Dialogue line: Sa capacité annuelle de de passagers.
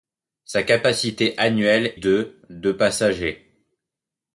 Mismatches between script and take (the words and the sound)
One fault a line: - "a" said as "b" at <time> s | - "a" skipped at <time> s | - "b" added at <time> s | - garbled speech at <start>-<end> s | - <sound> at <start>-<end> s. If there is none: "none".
none